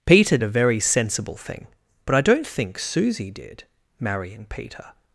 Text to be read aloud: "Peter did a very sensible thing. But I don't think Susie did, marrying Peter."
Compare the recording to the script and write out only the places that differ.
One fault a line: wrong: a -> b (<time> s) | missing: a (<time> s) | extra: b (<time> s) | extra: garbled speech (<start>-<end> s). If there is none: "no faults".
missing: did (0.4 s)